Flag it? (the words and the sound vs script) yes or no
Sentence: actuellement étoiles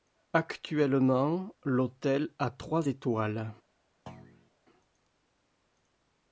yes